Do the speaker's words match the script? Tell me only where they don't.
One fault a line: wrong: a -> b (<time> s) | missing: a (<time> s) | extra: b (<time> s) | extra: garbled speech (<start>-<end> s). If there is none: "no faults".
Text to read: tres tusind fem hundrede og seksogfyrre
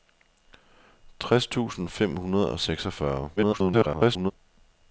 extra: garbled speech (3.4-4.3 s)